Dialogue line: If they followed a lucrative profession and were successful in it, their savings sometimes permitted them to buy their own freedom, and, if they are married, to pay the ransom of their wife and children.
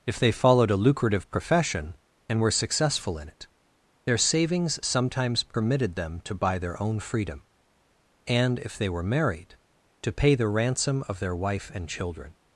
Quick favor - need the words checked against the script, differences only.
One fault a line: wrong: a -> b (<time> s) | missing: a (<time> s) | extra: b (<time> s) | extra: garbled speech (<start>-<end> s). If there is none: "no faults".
wrong: are -> were (8.9 s)